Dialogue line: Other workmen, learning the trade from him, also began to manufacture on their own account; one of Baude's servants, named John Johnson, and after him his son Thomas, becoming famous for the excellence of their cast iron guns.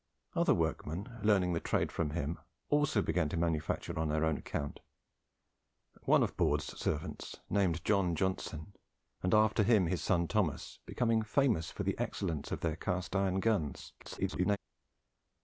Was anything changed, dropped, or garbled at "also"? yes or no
no